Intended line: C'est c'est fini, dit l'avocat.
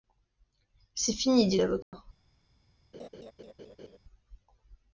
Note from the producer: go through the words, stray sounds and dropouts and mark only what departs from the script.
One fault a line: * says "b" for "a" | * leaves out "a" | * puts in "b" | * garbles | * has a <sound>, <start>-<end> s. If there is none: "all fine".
* leaves out "c'est"
* has a dropout, 1.8-1.9 s
* has a laugh, 2.9-4.0 s